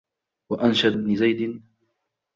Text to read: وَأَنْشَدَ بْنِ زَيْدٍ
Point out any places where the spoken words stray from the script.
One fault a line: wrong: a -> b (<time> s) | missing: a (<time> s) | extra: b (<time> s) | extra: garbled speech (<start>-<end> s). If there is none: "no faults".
no faults